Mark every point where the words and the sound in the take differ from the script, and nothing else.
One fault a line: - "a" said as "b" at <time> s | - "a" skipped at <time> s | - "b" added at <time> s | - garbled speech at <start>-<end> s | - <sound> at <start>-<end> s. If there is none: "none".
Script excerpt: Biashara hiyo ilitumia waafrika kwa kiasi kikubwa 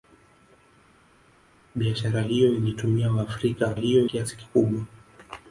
- "kwa" said as "hiyo" at 3.7 s